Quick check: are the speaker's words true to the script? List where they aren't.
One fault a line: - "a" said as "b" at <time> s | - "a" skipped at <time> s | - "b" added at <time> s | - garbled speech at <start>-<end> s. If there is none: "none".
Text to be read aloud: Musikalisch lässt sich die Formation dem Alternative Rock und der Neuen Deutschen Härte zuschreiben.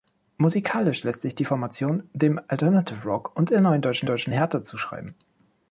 - "Deutschen" added at 4.1 s